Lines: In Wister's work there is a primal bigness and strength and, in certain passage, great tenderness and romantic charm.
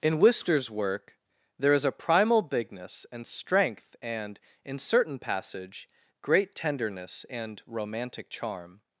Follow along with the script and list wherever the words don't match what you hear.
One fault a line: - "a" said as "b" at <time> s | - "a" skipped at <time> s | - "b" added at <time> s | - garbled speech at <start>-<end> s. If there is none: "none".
none